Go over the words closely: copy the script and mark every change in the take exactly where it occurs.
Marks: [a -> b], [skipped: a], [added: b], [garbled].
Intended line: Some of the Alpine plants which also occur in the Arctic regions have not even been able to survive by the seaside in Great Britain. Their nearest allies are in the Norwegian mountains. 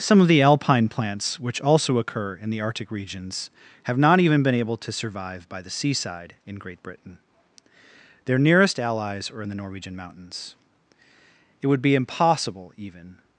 Some of the Alpine plants which also occur in the Arctic regions have not even been able to survive by the seaside in Great Britain. Their nearest allies are in the Norwegian mountains. [added: It would be impossible even]